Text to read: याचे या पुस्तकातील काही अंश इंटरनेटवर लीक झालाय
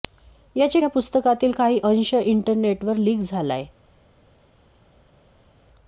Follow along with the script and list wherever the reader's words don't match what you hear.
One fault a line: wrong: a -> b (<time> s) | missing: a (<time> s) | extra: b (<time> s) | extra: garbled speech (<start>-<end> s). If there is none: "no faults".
no faults